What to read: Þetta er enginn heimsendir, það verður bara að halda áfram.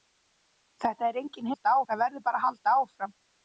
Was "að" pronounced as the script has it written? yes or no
yes